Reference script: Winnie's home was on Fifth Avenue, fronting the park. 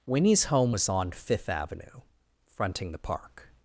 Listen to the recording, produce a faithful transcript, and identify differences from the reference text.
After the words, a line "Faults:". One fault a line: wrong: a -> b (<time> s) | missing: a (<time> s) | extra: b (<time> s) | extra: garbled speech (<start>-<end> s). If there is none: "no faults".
Winnie's home was on Fifth Avenue, fronting the park.
Faults:
no faults